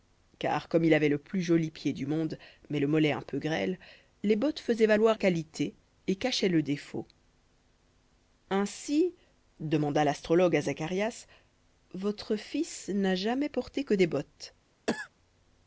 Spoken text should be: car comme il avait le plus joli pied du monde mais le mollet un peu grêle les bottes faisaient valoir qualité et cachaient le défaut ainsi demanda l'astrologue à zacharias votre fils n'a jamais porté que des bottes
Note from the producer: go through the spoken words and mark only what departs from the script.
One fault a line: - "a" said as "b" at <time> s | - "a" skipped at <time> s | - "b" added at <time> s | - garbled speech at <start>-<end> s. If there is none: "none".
none